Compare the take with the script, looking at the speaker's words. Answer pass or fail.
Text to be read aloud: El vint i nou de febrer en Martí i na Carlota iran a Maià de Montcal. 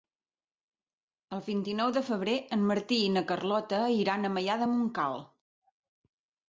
pass